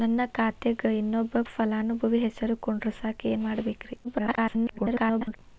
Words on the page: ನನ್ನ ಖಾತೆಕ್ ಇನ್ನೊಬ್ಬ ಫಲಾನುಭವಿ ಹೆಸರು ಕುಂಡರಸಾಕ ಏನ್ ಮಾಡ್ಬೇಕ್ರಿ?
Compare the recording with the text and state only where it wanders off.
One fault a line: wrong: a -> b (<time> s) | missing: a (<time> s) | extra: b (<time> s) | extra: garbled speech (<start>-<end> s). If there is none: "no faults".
extra: garbled speech (4.0-5.4 s)